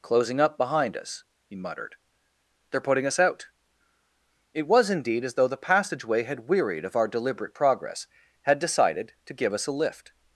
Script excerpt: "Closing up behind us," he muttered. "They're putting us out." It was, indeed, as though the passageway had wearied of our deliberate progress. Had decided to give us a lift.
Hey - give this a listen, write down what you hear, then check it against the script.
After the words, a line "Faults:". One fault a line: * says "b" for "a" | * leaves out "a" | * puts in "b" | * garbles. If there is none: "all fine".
"Closing up behind us," he muttered. "They're putting us out." It was, indeed, as though the passageway had wearied of our deliberate progress. Had decided to give us a lift.
Faults:
all fine